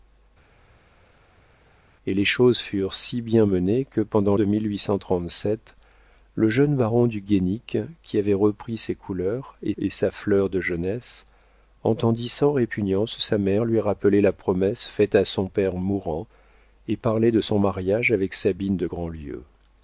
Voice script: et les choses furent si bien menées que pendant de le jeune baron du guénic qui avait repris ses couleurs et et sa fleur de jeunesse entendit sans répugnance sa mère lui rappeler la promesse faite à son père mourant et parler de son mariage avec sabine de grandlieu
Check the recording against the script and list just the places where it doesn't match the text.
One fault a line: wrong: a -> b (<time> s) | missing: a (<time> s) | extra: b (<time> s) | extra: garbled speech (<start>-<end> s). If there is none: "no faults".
no faults